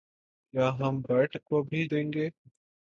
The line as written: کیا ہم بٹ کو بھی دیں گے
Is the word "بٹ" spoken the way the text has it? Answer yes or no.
yes